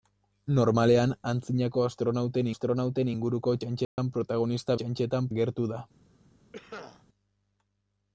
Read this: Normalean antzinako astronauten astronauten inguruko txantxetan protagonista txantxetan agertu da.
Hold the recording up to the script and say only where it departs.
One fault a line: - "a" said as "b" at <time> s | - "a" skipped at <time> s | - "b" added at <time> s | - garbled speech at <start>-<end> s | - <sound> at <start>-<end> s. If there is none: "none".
- dropout at 3.8-4.0 s
- cough at 6.5-7.0 s